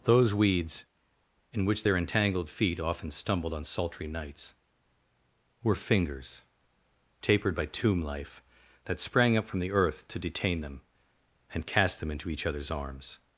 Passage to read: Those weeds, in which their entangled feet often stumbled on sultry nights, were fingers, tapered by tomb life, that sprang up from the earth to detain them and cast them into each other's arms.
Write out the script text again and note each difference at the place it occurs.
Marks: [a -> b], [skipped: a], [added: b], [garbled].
Those weeds, in which their entangled feet often stumbled on sultry nights, were fingers, tapered by tomb life, that sprang up from the earth to detain them and cast them into each other's arms.